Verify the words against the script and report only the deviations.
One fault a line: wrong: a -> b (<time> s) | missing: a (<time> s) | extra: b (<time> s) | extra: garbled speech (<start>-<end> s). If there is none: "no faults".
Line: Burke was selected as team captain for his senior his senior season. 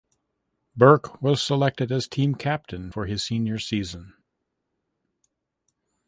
missing: his senior (3.6 s)